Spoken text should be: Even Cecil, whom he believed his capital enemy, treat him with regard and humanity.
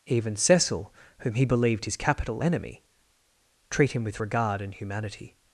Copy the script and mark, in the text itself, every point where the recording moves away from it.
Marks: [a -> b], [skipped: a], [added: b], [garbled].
Even Cecil, whom he believed his capital enemy, treat him with regard and humanity.